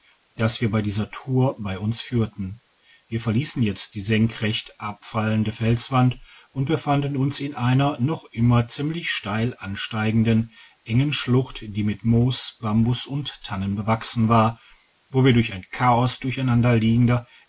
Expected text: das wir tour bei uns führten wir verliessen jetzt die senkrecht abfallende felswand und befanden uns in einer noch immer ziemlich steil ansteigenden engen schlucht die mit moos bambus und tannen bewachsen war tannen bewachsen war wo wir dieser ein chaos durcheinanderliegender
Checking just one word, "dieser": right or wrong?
wrong